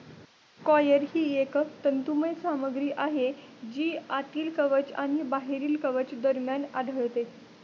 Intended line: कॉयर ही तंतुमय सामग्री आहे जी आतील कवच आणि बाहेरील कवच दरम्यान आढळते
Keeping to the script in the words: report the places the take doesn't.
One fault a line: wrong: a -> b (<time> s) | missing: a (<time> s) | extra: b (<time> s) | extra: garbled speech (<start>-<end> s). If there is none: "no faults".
extra: एक (1.3 s)